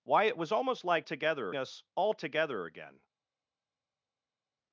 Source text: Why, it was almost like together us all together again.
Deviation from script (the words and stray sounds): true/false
false